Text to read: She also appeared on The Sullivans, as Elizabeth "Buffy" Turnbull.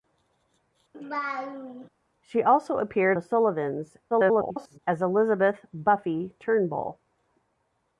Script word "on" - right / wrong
wrong